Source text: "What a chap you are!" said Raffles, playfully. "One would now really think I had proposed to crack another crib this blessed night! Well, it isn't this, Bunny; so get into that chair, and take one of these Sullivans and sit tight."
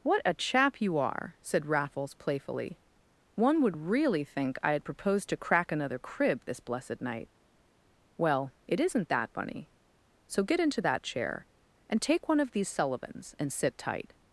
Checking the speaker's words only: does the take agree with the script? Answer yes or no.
no